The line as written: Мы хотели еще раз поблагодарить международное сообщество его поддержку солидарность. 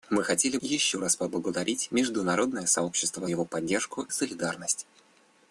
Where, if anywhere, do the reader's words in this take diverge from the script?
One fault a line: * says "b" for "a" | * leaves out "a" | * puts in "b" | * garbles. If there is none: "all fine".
all fine